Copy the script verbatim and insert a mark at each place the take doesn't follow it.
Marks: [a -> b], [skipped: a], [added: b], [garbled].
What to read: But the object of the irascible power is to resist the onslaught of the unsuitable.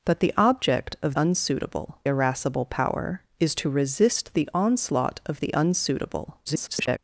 But the object of [the -> unsuitable] irascible power is to resist the onslaught of the unsuitable. [garbled]